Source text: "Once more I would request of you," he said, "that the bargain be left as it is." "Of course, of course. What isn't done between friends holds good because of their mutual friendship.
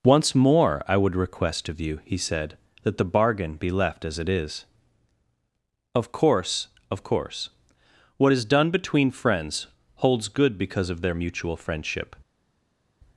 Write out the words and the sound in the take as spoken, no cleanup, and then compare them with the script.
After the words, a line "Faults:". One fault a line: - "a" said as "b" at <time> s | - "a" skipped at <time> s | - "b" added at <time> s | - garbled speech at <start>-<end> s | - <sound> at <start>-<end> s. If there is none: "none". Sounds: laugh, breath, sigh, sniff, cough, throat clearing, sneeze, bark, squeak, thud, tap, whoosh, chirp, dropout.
"Once more I would request of you," he said, "that the bargain be left as it is." "Of course, of course. What is done between friends holds good because of their mutual friendship.
Faults:
- "isn't" said as "is" at 8.3 s